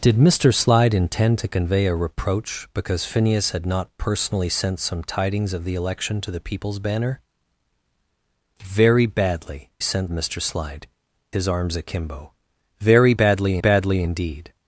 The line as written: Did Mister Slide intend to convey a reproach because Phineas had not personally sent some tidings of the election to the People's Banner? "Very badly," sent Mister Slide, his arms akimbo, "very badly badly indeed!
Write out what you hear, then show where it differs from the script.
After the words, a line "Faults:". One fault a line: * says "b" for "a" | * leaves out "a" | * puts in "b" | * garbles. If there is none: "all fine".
Did Mister Slide intend to convey a reproach because Phineas had not personally sent some tidings of the election to the People's Banner? "Very badly," sent Mister Slide, his arms akimbo, "very badly badly indeed!
Faults:
all fine